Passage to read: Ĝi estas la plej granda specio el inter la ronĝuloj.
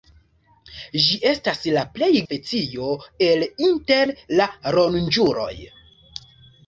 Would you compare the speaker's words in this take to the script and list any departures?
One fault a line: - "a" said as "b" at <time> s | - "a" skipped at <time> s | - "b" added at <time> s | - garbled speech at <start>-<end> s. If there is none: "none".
- "granda" skipped at 2.1 s